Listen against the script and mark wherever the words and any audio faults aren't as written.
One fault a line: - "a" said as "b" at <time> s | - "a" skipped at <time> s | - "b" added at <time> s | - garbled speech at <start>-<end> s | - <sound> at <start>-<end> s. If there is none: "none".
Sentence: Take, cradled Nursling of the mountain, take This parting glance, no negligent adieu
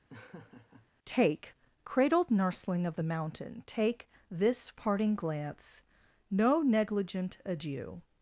- laugh at 0.1-0.9 s